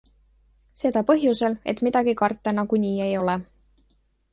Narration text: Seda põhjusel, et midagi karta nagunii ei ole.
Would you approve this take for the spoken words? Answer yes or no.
yes